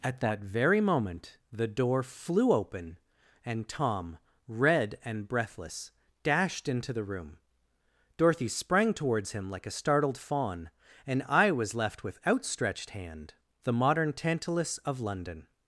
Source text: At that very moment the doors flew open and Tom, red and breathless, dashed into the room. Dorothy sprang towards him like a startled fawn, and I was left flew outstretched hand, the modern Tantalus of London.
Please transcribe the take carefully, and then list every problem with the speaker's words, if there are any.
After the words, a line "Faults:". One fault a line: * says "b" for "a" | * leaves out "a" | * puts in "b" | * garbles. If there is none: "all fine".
At that very moment the door flew open and Tom, red and breathless, dashed into the room. Dorothy sprang towards him like a startled fawn, and I was left with outstretched hand, the modern Tantalus of London.
Faults:
* says "door" for "doors"
* says "with" for "flew"